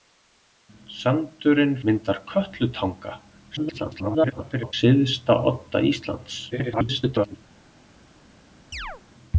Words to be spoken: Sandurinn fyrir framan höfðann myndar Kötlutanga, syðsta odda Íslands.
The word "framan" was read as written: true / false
false